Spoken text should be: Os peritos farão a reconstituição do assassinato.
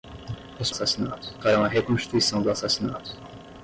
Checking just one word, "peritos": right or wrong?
wrong